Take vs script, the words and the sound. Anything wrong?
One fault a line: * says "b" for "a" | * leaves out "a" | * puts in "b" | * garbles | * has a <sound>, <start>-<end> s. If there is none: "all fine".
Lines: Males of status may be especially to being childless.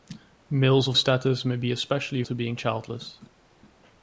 all fine